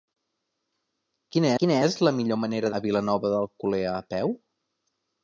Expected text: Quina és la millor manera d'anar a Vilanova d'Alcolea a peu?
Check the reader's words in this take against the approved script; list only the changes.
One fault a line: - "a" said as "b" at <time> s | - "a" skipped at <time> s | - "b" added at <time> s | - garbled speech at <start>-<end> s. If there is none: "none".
- "quina" added at 1.6 s
- "d'anar" skipped at 2.7 s